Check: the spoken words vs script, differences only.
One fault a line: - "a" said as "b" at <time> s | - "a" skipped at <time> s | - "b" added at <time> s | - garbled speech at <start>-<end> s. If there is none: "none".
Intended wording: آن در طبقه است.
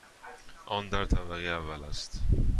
- "اول" added at 1.5 s